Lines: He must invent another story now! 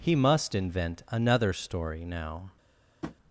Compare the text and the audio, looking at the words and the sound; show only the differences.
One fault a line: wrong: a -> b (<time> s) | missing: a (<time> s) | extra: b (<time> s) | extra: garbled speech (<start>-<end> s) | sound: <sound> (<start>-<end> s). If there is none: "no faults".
sound: tap (3.0-3.2 s)